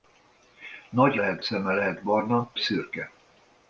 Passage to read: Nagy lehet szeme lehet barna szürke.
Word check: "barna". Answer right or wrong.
right